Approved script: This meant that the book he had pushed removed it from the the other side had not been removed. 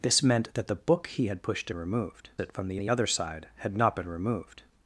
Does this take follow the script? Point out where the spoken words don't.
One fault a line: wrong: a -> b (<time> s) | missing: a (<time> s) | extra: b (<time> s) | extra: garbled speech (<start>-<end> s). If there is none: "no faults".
no faults